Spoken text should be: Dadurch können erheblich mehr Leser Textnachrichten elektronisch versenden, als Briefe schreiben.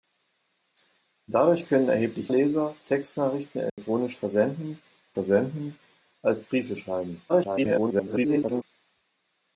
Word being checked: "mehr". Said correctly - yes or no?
no